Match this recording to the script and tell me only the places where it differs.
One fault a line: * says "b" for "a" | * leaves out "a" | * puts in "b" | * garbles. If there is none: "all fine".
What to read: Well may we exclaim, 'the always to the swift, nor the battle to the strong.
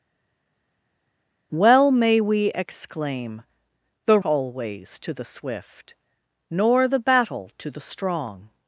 all fine